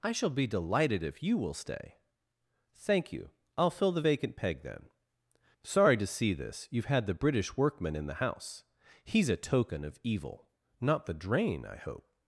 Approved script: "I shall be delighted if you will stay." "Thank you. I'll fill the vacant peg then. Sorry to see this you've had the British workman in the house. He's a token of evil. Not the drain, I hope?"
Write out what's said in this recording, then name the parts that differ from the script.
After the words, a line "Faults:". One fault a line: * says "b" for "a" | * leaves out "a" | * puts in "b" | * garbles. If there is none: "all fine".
"I shall be delighted if you will stay." "Thank you. I'll fill the vacant peg then. Sorry to see this you've had the British workman in the house. He's a token of evil. Not the drain, I hope?"
Faults:
all fine